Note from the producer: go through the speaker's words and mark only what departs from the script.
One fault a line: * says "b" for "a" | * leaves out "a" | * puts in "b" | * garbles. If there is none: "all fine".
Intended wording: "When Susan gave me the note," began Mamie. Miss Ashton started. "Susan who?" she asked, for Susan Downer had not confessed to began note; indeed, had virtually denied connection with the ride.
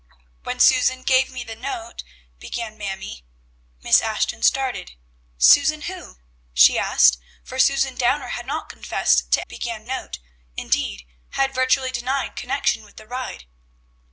all fine